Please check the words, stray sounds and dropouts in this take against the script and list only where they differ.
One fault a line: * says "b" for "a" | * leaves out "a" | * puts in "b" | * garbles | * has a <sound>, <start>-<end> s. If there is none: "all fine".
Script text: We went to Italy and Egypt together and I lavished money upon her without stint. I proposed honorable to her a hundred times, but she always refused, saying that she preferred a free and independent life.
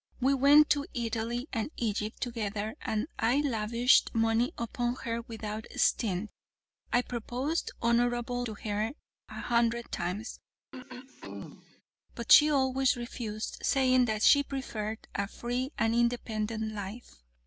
* has a throat clearing, 10.7-11.8 s